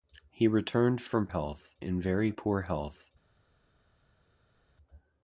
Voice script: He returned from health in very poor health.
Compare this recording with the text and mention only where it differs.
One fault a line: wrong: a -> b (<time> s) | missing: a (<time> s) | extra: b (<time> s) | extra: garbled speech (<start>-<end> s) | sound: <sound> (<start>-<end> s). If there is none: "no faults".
no faults